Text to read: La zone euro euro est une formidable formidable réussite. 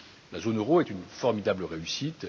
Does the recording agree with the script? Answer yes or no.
no